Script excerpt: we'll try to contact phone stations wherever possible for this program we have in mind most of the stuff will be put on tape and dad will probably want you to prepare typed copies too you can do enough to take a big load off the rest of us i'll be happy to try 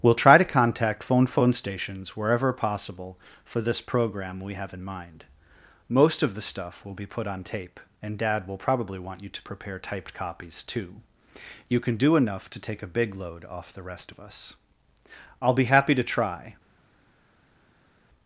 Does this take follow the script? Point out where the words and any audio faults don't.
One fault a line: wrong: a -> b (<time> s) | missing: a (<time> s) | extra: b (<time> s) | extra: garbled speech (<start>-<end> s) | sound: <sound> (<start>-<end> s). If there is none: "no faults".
extra: phone (1.3 s)